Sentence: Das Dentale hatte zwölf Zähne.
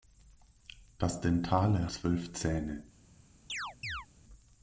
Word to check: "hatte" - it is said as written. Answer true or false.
false